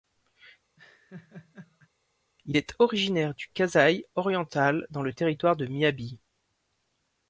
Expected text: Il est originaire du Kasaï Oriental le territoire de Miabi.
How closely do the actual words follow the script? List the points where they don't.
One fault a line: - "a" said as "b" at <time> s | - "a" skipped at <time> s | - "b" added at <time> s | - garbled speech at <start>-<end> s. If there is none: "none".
- "dans" added at 4.9 s